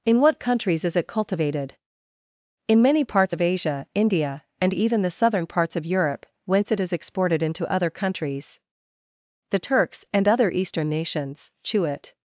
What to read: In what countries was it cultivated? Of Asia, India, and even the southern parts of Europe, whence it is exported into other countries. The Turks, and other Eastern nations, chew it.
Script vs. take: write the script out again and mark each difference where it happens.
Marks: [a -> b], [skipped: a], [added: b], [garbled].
In what countries [was -> is] it cultivated? [added: In many parts] Of Asia, India, and even the southern parts of Europe, whence it is exported into other countries. The Turks, and other Eastern nations, chew it.